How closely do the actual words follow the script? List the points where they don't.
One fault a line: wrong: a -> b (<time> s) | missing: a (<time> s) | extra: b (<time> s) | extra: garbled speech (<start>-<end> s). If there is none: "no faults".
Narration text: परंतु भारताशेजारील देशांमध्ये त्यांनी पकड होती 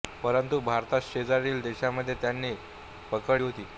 no faults